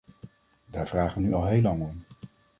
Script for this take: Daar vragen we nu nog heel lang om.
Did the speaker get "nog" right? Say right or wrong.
wrong